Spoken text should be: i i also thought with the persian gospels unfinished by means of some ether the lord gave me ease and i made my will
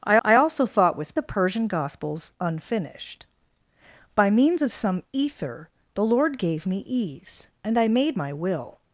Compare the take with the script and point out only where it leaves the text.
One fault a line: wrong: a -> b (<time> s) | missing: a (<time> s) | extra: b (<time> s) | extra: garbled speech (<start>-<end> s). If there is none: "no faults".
no faults